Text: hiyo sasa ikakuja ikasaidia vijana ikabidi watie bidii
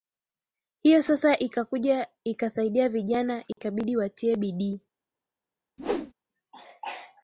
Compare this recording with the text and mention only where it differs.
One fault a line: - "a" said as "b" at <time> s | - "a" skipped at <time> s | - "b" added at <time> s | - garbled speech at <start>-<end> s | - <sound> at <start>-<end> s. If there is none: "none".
- dropout at 3.5-3.6 s
- whoosh at 5.8-6.1 s